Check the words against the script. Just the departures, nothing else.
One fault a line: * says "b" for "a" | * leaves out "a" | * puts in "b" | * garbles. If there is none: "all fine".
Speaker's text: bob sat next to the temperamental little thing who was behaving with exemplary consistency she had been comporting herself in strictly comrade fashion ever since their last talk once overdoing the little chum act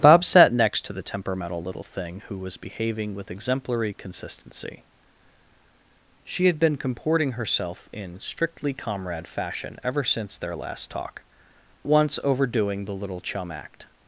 all fine